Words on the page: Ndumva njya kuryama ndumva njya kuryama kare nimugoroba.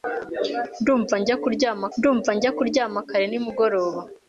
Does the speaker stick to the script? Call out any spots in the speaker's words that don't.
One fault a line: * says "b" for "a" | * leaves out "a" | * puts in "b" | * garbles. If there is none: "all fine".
all fine